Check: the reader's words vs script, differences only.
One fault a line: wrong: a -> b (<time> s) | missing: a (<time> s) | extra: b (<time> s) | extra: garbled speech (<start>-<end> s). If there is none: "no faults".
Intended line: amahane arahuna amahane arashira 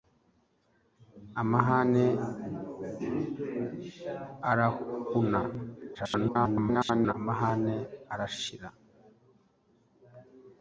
extra: garbled speech (5.9-7.1 s)